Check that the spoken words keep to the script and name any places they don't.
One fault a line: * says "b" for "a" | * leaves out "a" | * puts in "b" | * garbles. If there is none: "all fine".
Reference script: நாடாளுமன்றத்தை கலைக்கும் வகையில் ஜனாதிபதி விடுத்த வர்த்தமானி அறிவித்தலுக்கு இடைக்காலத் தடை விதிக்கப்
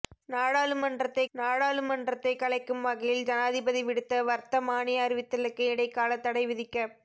* puts in "நாடாளுமன்றத்தை"